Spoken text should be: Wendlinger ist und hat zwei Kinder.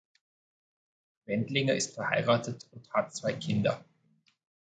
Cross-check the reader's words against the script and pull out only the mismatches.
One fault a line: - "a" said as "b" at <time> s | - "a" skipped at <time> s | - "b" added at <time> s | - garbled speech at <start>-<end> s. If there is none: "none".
- "verheiratet" added at 1.9 s